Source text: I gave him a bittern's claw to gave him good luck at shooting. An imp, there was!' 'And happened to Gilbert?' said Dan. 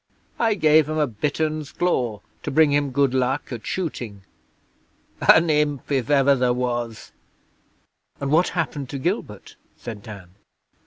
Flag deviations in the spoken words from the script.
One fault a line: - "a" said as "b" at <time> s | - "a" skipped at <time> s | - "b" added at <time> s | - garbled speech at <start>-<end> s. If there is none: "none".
- "gave" said as "bring" at 2.5 s
- "if ever" added at 5.9 s
- "what" added at 8.3 s